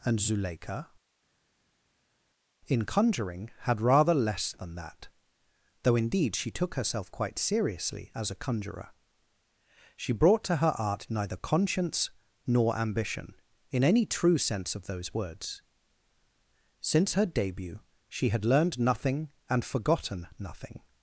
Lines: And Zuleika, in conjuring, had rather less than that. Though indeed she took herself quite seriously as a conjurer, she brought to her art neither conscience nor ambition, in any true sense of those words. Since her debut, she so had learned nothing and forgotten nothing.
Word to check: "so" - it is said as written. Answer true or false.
false